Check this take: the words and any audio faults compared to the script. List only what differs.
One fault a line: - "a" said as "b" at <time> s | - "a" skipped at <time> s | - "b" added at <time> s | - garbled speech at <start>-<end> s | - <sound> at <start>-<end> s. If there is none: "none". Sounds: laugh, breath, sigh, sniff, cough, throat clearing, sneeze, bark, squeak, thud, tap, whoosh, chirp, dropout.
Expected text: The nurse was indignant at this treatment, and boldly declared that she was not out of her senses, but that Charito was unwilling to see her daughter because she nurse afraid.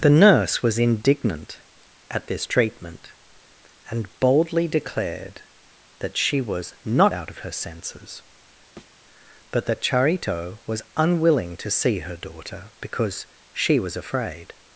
- thud at 8.8-9.0 s
- "nurse" said as "was" at 13.8 s